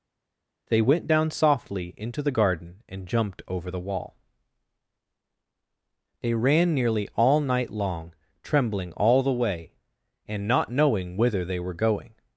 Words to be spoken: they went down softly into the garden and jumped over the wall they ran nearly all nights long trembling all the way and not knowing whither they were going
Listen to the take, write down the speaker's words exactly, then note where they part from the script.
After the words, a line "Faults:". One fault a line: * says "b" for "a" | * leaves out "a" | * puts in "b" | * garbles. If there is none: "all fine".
they went down softly into the garden and jumped over the wall they ran nearly all night long trembling all the way and not knowing whither they were going
Faults:
* says "night" for "nights"